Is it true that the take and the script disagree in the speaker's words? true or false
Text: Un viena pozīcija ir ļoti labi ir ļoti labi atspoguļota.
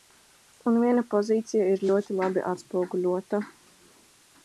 true